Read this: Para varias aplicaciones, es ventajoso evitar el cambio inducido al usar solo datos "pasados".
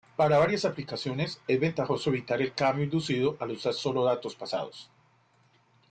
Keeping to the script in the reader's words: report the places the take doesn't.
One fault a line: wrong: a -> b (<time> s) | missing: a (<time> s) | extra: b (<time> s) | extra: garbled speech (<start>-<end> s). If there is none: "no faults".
no faults